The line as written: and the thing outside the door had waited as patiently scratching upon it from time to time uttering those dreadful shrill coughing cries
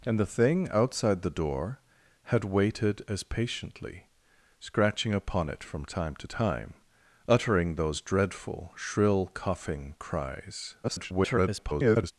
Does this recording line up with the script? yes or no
no